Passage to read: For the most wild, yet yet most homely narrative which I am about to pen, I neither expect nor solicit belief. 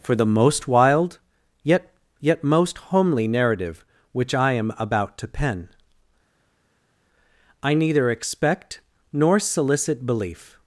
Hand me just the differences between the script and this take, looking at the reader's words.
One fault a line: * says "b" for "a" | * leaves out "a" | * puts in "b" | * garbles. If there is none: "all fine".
all fine